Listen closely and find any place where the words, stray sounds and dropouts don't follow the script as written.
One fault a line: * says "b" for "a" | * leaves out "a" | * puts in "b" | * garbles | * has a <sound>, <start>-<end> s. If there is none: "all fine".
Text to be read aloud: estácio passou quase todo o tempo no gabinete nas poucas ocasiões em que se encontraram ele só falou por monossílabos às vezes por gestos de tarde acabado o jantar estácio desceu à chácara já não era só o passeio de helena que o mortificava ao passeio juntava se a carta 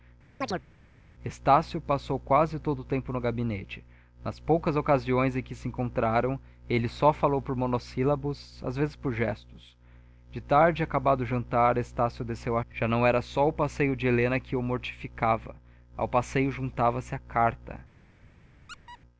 * has a chirp, 0.4-0.7 s
* leaves out "chácara"
* has a squeak, 18.7-19.0 s